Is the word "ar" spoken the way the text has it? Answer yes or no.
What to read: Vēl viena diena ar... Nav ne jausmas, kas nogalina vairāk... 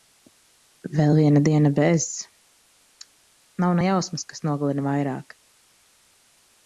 no